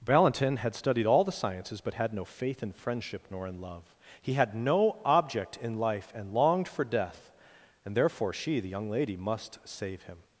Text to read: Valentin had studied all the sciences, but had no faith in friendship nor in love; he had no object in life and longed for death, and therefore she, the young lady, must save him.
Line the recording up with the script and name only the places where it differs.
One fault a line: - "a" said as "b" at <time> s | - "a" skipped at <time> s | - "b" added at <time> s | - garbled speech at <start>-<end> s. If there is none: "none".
none